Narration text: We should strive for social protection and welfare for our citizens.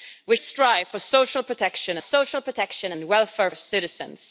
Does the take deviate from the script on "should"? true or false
true